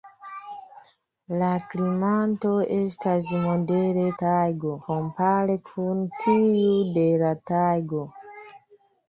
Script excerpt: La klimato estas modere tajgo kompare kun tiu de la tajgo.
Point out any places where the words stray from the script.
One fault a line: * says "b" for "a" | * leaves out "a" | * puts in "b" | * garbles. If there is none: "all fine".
all fine